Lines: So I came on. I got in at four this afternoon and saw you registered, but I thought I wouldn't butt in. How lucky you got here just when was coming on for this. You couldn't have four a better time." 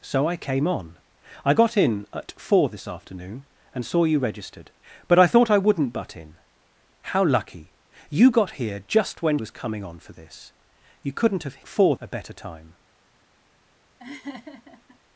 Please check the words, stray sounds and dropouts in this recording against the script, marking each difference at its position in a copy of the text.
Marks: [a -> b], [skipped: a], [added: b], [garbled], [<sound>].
So I came on. I got in at four this afternoon and saw you registered, but I thought I wouldn't butt in. How lucky you got here just when was coming on for this. You couldn't have four a better time." [laugh]